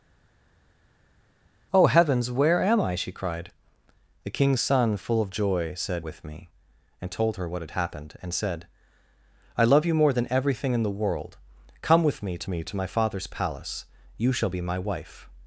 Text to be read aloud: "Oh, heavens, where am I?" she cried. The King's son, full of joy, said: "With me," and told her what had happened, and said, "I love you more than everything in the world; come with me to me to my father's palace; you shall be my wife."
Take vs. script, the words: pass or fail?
pass